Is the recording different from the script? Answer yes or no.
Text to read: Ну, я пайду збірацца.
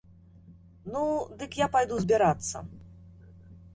yes